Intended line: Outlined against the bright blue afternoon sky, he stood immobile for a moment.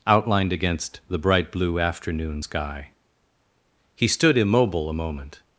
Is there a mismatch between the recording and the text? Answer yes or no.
yes